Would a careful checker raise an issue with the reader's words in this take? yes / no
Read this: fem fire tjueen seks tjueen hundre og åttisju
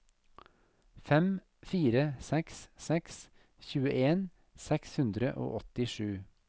yes